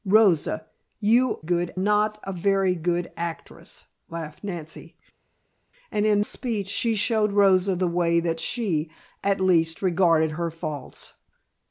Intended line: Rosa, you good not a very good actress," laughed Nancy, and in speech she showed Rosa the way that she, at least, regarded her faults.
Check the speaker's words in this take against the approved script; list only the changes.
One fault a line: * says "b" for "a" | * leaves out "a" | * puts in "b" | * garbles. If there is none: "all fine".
all fine